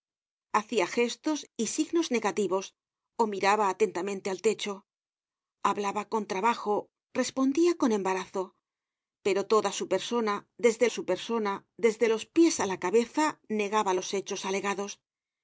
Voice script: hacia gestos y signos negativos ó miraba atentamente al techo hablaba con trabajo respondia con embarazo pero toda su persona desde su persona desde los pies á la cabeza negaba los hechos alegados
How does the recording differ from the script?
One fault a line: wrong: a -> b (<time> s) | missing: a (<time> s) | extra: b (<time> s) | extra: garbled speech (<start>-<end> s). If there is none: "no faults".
no faults